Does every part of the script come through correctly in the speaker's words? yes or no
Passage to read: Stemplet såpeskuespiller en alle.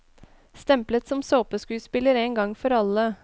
no